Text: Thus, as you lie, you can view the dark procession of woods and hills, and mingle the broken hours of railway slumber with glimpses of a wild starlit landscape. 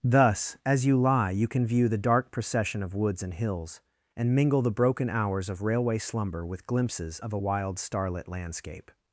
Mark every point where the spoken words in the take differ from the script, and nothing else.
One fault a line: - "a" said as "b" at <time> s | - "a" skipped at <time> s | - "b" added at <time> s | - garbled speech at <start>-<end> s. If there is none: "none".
none